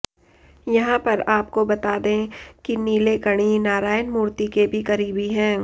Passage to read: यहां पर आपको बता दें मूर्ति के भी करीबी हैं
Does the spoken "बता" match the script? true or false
true